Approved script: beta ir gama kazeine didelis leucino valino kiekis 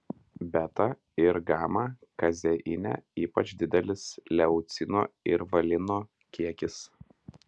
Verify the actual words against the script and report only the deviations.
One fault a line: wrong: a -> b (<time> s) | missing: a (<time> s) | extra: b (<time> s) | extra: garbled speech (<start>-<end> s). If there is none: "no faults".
extra: ypač (3.2 s)
extra: ir (5.3 s)